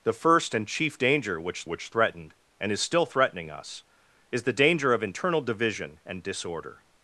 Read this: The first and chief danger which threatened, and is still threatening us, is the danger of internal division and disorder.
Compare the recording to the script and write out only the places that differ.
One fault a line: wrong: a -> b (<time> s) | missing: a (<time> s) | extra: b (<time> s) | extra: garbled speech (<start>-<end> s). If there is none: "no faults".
extra: which (1.7 s)